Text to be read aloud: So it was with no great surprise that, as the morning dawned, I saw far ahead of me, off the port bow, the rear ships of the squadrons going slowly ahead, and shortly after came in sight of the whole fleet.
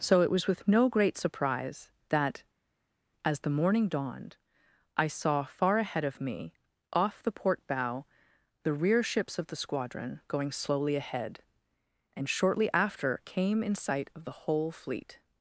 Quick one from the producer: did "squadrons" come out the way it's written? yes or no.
no